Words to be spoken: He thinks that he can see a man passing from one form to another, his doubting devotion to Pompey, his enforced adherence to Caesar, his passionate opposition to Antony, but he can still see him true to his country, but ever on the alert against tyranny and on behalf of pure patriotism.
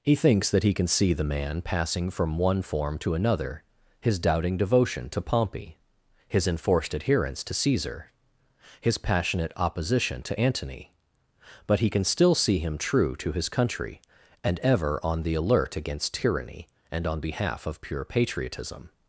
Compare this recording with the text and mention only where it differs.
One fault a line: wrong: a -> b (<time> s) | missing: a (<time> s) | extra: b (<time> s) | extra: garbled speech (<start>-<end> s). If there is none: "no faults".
wrong: a -> the (1.1 s)
wrong: but -> and (14.4 s)